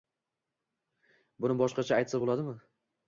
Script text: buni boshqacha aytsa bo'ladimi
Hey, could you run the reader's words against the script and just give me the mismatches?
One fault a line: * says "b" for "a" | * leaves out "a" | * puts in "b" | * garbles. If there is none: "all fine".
all fine